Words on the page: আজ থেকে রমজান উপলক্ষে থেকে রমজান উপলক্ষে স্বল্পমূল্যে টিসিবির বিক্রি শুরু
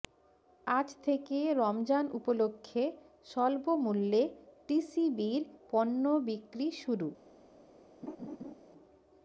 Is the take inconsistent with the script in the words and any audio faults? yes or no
yes